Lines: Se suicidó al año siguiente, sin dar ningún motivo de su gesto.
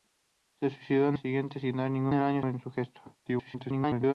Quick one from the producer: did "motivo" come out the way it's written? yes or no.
no